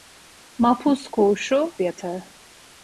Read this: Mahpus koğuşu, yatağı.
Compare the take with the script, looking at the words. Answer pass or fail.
pass